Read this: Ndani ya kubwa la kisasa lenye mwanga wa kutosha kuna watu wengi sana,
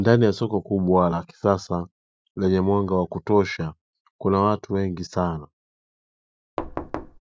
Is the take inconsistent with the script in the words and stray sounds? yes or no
yes